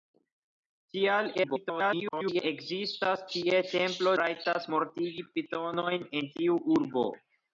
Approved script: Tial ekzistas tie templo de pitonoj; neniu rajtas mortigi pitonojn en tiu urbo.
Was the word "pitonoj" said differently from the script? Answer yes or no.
yes